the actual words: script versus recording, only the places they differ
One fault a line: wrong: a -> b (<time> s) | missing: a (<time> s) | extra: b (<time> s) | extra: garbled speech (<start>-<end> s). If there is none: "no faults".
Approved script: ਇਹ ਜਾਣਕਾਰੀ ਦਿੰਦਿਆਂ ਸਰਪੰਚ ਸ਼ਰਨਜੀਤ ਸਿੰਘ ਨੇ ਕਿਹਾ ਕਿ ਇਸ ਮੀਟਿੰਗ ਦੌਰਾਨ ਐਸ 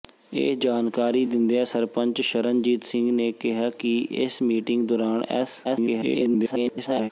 extra: garbled speech (5.6-7.1 s)